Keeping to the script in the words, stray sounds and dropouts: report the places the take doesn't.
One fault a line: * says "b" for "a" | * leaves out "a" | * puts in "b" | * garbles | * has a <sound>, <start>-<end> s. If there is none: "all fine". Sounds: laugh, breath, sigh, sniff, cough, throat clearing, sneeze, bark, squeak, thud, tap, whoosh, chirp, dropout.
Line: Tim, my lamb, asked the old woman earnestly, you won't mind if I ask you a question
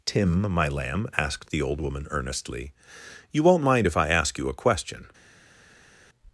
all fine